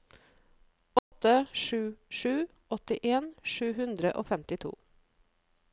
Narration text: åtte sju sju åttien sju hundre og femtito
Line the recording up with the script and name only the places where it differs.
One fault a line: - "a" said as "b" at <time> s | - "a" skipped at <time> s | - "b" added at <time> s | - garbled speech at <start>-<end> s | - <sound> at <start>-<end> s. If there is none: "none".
- dropout at 1.0-1.1 s